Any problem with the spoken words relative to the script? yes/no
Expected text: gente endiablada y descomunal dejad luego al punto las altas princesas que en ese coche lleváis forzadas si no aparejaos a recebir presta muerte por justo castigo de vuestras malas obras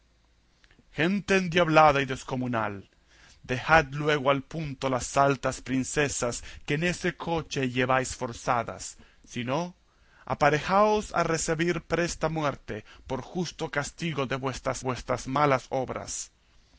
yes